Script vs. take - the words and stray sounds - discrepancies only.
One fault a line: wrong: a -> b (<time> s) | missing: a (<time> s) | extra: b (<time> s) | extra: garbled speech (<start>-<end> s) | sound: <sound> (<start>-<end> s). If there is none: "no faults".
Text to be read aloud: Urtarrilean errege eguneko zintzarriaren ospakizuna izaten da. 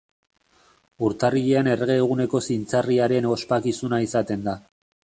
no faults